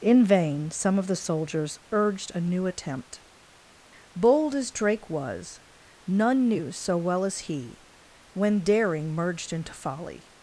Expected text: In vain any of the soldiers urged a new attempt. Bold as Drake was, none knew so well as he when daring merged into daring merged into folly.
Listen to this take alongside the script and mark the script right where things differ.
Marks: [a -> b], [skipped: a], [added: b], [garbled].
In vain [any -> some] of the soldiers urged a new attempt. Bold as Drake was, none knew so well as he when daring merged into [skipped: daring merged into] folly.